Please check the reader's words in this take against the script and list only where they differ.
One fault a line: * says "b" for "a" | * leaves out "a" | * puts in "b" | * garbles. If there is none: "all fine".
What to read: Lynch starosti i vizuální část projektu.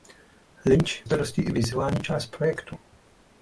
all fine